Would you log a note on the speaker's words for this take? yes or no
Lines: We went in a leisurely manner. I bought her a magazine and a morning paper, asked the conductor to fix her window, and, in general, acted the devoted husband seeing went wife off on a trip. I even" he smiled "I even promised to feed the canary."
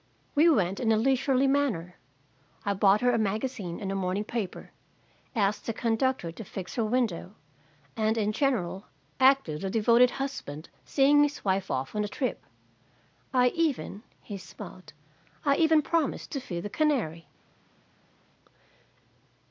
yes